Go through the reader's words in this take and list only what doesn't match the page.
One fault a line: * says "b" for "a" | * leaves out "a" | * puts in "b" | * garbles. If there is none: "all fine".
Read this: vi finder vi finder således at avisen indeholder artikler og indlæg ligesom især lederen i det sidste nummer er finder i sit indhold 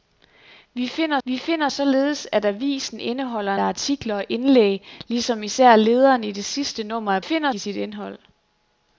all fine